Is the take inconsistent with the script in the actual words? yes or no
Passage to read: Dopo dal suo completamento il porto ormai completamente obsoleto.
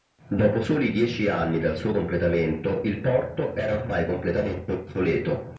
yes